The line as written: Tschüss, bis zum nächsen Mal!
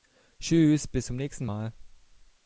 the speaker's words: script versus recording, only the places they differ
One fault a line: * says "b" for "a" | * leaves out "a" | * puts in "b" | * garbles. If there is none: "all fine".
all fine